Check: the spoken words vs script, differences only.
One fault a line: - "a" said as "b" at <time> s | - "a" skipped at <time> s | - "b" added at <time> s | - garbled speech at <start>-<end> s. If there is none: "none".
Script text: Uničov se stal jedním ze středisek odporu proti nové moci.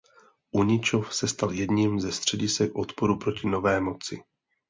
none